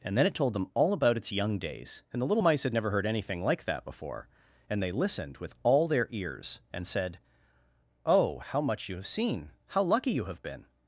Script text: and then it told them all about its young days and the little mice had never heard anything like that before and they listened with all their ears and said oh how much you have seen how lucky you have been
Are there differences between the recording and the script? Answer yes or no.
no